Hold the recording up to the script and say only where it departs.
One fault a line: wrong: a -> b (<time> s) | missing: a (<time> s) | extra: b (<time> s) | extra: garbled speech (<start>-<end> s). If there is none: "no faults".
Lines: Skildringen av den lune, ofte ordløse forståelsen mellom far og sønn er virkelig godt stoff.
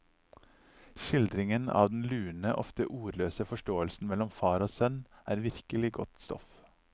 no faults